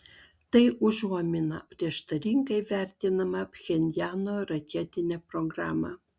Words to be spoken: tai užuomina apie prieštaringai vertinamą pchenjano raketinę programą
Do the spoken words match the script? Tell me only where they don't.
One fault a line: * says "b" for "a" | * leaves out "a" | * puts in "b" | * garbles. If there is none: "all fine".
* leaves out "apie"